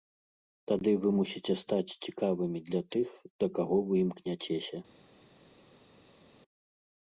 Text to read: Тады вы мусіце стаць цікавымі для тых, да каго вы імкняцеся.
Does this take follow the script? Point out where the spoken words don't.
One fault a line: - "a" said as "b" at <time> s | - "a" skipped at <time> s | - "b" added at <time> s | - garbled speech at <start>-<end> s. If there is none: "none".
none